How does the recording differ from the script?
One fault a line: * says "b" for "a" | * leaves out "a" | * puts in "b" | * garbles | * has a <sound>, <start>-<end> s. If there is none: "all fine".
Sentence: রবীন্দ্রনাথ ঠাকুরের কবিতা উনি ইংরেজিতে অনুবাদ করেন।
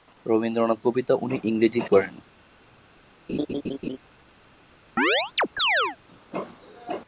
* leaves out "ঠাকুরের"
* leaves out "অনুবাদ"
* has a laugh, 3.3-4.0 s
* has a chirp, 5.0-6.0 s